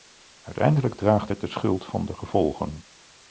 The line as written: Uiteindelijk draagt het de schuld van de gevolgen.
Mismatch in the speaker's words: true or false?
false